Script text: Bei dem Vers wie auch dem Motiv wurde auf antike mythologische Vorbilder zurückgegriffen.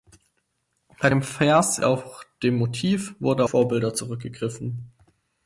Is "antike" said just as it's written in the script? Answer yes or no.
no